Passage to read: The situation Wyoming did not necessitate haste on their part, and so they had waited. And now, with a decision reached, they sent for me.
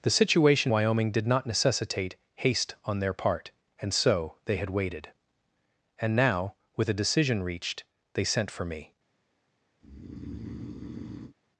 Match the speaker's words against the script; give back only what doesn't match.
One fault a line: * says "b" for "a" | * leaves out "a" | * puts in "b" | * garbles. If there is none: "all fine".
all fine